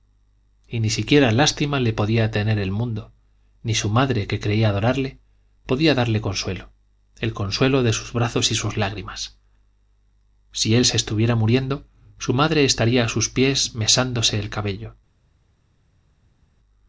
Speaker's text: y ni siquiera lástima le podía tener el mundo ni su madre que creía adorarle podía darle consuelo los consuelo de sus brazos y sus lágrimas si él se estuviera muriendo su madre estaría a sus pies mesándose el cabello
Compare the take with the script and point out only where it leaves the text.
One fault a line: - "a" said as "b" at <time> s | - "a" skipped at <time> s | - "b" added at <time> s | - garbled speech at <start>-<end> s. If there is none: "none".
- "los" said as "el" at 7.2 s